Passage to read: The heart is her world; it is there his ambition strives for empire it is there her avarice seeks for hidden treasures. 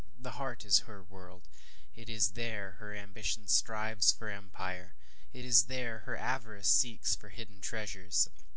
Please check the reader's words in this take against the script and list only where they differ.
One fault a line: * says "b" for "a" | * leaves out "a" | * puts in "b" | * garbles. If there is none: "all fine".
* says "her" for "his"